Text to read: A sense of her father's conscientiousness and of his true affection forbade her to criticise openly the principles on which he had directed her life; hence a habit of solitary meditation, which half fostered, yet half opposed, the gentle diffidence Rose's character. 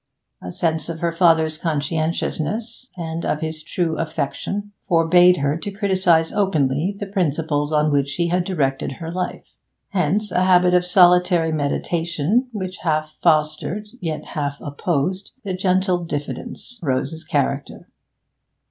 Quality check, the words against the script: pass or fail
pass